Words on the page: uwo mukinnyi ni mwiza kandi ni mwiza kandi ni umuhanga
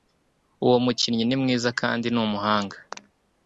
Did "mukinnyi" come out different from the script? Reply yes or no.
no